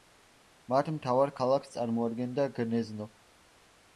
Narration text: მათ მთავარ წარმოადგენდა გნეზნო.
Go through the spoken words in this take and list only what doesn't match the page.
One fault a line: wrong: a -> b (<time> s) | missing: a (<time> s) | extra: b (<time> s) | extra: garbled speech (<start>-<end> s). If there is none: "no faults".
extra: ქალაქს (1.4 s)